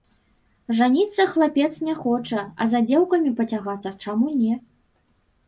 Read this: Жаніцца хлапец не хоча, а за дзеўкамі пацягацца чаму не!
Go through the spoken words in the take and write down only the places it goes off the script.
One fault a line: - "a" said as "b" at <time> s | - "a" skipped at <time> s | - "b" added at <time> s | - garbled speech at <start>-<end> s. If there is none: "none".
none